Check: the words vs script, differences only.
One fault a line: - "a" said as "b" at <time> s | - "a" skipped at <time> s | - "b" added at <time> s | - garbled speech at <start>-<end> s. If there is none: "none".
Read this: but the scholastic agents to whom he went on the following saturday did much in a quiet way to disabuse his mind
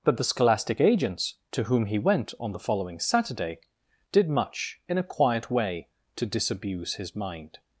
none